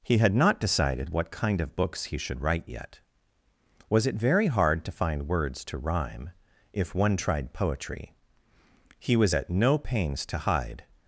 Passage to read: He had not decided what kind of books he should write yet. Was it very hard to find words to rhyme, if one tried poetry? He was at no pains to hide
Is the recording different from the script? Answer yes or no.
no